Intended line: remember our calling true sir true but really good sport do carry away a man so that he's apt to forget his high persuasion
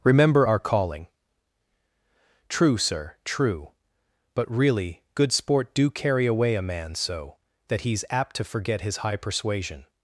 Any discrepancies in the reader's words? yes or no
no